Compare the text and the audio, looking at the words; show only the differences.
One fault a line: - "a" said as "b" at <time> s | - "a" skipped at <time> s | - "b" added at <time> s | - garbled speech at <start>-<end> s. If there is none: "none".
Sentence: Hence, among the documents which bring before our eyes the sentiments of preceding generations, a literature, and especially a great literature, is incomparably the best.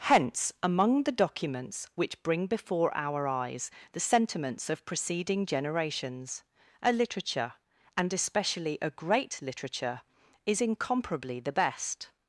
none